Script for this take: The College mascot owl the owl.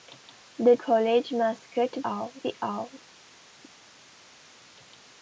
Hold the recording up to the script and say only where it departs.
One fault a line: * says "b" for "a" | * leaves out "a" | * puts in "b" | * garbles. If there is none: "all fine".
all fine